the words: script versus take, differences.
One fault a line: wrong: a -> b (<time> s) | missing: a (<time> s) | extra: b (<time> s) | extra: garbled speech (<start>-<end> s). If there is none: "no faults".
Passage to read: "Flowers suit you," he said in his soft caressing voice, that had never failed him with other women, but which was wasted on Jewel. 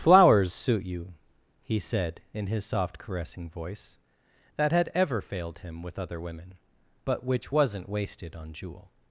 wrong: never -> ever (5.0 s)
wrong: was -> wasn't (7.5 s)